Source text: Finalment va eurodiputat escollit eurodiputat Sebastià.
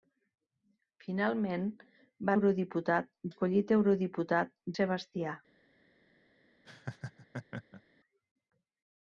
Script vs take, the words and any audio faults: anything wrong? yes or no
yes